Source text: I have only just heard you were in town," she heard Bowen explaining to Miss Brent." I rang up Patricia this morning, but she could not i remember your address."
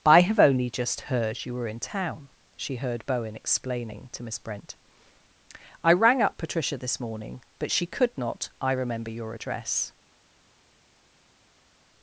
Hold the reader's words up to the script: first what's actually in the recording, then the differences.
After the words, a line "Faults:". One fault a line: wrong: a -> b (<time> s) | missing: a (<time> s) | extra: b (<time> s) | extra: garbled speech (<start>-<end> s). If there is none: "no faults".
I have only just heard you were in town," she heard Bowen explaining to Miss Brent." I rang up Patricia this morning, but she could not i remember your address."
Faults:
no faults